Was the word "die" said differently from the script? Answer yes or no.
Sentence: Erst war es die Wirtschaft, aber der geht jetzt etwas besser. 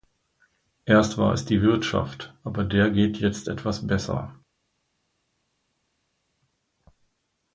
no